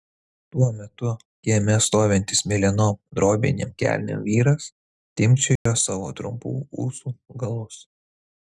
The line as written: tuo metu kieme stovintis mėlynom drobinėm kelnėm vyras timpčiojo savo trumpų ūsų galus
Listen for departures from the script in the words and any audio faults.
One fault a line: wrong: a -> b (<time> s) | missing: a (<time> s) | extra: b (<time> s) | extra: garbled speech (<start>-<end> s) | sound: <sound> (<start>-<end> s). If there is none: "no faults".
sound: dropout (5.6-5.7 s)